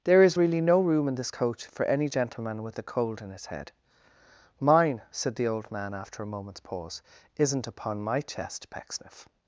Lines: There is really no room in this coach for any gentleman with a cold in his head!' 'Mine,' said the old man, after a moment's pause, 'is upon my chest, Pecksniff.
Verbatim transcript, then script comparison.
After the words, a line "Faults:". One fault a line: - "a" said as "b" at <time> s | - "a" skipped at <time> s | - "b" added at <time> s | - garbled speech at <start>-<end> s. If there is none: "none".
There is really no room in this coach for any gentleman with a cold in his head!' 'Mine,' said the old man, after a moment's pause, 'isn't upon my chest, Pecksniff.
Faults:
- "is" said as "isn't" at 7.4 s